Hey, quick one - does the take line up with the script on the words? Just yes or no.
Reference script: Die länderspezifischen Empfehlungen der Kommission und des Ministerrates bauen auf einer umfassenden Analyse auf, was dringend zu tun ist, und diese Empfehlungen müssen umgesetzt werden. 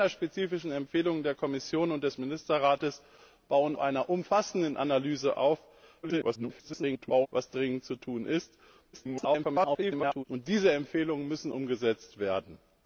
no